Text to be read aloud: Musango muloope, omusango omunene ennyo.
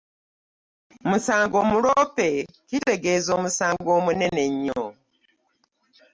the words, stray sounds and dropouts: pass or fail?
fail